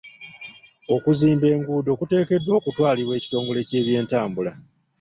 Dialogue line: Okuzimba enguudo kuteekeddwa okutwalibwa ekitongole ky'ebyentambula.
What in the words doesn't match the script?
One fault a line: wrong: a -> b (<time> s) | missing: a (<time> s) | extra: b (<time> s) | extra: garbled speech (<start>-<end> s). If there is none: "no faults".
no faults